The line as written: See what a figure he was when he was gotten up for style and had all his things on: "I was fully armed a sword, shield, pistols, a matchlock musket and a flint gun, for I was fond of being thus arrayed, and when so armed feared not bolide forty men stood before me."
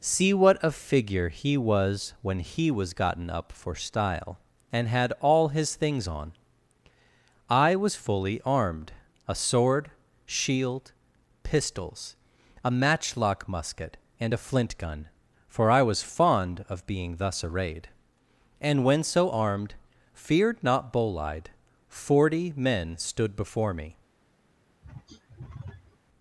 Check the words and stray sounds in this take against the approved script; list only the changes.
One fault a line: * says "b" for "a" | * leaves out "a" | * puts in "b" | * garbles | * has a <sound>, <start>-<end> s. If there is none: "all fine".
* has a throat clearing, 24.8-26.0 s